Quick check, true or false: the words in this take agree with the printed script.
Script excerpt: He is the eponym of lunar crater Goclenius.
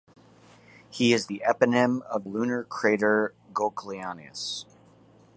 true